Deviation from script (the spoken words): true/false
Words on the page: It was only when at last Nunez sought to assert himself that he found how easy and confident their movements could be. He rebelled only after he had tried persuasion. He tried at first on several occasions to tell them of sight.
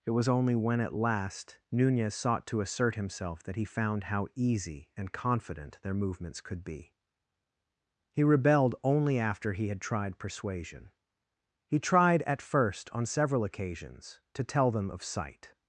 false